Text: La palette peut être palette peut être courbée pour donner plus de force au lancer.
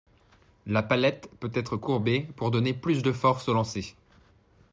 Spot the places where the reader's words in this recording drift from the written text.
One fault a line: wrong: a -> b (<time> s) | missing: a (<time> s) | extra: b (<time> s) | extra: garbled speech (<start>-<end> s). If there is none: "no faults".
missing: palette peut être (1.8 s)